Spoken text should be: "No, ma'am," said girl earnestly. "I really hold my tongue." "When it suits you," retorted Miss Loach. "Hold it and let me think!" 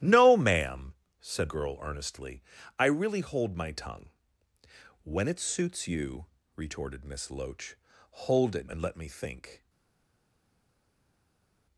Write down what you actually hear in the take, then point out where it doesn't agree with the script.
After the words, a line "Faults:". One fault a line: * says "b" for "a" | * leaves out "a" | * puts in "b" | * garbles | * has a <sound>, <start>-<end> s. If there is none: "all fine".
"No, ma'am," said girl earnestly. "I really hold my tongue." "When it suits you," retorted Miss Loach. "Hold it and let me think!"
Faults:
all fine